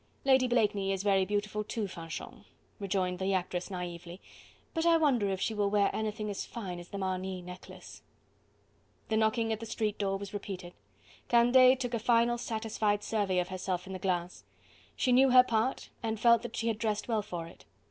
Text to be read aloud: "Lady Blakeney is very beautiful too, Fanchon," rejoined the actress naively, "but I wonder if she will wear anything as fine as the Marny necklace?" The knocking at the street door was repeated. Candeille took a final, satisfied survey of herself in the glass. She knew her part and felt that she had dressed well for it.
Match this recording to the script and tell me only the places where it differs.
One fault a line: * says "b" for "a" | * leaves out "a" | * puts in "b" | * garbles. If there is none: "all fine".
all fine